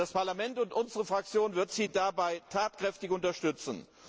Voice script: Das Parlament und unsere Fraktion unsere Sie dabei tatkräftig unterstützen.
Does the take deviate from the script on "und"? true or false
false